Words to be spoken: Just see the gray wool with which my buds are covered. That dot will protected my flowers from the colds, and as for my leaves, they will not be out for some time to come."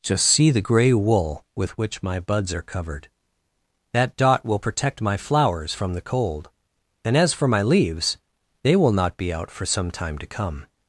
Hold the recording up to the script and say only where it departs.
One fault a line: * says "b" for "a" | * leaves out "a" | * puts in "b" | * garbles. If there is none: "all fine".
* says "protect" for "protected"
* says "cold" for "colds"